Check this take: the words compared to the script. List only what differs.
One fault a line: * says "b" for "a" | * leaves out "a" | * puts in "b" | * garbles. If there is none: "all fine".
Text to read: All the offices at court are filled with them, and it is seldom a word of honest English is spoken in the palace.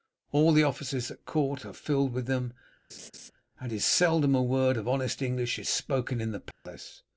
* leaves out "it"